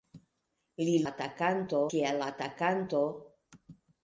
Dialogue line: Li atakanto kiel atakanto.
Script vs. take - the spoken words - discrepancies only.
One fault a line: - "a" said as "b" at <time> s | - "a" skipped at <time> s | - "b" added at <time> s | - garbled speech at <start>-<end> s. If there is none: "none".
none